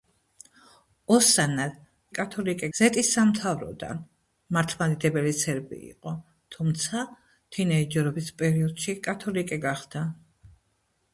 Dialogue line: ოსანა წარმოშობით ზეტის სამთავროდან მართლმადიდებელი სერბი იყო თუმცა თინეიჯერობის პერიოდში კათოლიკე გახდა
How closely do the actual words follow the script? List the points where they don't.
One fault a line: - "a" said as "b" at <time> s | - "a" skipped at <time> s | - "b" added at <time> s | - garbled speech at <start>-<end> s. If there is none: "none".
- "წარმოშობით" said as "კათოლიკე" at 2.2 s